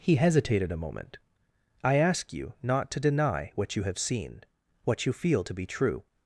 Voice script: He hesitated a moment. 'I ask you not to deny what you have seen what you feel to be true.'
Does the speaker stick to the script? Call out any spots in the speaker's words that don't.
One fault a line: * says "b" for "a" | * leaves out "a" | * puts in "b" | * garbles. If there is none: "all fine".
all fine